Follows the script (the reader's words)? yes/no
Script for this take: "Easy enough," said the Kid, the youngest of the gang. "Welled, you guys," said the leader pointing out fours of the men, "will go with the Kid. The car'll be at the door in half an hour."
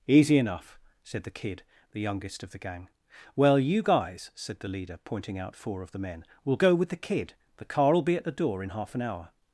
no